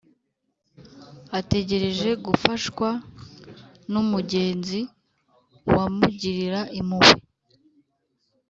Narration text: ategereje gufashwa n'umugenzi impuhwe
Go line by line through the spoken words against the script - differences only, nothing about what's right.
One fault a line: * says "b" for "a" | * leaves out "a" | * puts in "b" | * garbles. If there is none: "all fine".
* puts in "wamugirira"